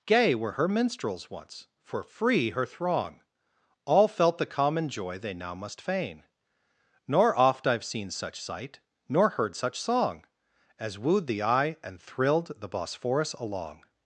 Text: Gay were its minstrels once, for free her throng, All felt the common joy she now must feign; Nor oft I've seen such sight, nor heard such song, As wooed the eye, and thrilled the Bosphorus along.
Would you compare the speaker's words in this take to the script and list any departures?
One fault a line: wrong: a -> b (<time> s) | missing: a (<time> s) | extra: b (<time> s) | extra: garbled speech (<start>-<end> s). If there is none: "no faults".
wrong: its -> her (0.5 s)
wrong: she -> they (5.2 s)